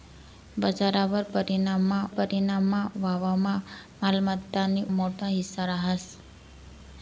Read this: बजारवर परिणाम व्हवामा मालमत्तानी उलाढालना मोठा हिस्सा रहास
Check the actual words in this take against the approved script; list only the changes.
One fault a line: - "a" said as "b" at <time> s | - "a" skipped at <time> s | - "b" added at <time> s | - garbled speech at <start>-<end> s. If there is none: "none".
- "परिणाम" added at 2.2 s
- "उलाढालना" skipped at 4.8 s